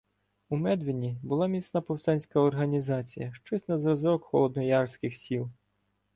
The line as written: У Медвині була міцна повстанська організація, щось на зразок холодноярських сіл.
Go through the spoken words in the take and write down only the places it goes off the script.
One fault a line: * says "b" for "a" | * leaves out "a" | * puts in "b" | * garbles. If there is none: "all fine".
all fine